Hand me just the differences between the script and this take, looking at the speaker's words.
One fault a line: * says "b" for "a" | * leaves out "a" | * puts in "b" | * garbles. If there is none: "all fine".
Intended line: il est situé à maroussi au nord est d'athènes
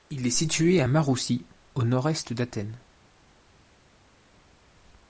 all fine